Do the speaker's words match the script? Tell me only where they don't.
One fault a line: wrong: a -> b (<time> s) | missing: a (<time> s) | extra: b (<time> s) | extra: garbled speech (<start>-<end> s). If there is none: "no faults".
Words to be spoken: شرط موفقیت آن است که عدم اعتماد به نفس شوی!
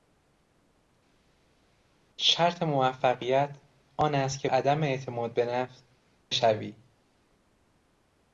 no faults